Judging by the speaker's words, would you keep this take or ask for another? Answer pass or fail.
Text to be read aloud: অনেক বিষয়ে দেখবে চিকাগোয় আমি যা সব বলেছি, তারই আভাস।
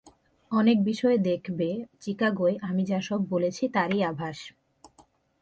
pass